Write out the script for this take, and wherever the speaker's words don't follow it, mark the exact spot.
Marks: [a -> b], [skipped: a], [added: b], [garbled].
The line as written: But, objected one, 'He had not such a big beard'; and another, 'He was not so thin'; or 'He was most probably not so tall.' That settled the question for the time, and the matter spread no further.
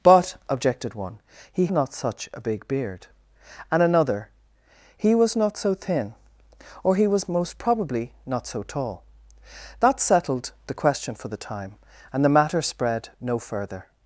But, objected one, 'He [skipped: had] not such a big beard'; and another, 'He was not so thin'; or 'He was most probably not so tall.' That settled the question for the time, and the matter spread no further.